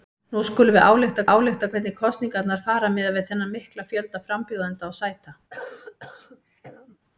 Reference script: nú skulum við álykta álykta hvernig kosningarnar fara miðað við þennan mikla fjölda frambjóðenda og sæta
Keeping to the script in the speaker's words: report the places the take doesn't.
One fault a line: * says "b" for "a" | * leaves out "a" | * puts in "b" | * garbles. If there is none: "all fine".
all fine